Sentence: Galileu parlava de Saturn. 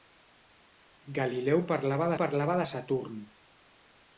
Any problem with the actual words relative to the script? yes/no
yes